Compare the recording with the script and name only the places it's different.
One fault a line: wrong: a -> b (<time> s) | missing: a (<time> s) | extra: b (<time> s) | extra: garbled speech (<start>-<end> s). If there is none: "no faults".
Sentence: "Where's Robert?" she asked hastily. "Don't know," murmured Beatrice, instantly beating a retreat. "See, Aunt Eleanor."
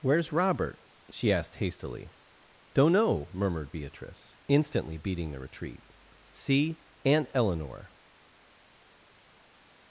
wrong: a -> the (5.3 s)